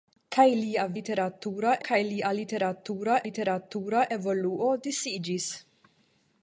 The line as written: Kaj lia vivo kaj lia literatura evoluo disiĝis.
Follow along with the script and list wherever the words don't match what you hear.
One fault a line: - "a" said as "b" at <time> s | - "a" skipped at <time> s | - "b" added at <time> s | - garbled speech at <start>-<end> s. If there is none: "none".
- "vivo" said as "literatura" at 1.0 s
- "literatura" added at 3.3 s